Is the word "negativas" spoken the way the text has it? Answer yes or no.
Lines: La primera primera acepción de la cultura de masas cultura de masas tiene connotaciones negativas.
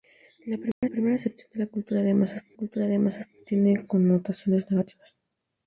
yes